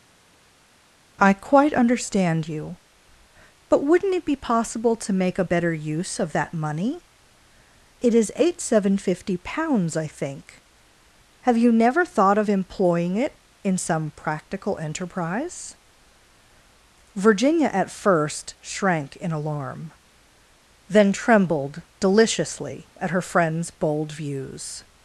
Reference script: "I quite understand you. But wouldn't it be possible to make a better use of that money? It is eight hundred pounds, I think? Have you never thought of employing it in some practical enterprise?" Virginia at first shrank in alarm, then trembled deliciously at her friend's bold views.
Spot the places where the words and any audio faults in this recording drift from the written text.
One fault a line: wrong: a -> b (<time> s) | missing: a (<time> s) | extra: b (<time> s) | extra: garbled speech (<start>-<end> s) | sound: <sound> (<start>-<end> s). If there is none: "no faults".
wrong: hundred -> seven fifty (8.6 s)